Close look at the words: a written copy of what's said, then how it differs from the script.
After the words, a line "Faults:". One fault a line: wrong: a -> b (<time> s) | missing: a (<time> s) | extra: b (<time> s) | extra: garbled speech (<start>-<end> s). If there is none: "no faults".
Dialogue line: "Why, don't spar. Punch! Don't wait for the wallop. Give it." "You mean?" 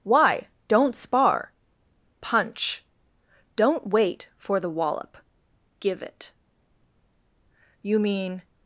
"Why, don't spar. Punch! Don't wait for the wallop. Give it." "You mean?"
Faults:
no faults